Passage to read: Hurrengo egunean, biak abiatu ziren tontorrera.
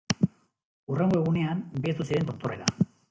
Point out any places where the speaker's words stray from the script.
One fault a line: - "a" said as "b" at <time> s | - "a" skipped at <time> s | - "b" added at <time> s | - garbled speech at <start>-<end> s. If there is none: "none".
- "biak" skipped at 1.6 s